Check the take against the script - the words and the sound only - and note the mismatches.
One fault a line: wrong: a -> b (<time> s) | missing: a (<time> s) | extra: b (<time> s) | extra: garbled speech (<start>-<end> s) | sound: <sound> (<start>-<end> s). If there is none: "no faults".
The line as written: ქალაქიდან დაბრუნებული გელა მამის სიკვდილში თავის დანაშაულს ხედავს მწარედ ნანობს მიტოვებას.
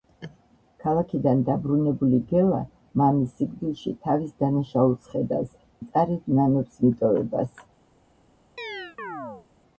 sound: chirp (8.6-9.5 s)